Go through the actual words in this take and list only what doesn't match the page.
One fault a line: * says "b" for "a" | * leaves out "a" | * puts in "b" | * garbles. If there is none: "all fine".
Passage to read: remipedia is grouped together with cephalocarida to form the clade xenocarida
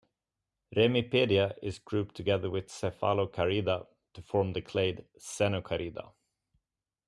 all fine